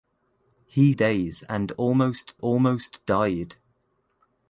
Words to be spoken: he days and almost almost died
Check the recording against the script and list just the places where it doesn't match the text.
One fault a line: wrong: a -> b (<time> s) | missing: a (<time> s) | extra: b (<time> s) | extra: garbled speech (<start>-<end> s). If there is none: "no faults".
no faults